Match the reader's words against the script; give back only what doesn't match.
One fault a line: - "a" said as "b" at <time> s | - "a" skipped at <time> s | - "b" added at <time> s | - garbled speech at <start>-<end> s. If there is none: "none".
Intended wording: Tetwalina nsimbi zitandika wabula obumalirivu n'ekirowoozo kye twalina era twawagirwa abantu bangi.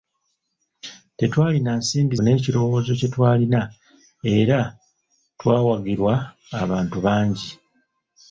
- "zitandika wabula obumalirivu" skipped at 2.1 s